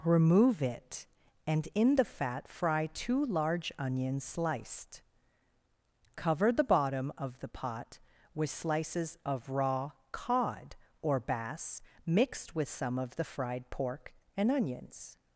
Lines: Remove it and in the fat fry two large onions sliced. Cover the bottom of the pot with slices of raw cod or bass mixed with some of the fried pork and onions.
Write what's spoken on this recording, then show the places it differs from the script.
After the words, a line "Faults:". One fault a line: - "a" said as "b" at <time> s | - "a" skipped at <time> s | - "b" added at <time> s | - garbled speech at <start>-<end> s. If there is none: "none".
Remove it and in the fat fry two large onions sliced. Cover the bottom of the pot with slices of raw cod or bass mixed with some of the fried pork and onions.
Faults:
none